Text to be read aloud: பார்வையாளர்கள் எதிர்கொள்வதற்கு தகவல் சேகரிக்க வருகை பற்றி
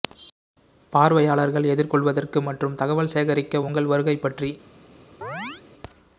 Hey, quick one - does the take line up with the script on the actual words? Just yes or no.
no